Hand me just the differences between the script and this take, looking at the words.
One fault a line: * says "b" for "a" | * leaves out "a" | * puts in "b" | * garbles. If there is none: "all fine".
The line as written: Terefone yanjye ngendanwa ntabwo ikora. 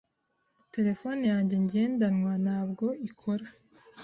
all fine